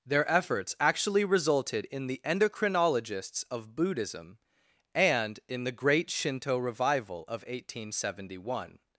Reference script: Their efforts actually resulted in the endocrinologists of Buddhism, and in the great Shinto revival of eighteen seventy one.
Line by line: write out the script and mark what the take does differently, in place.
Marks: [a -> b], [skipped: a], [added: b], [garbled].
Their efforts actually resulted in the endocrinologists of Buddhism, and in the great Shinto revival of eighteen seventy one.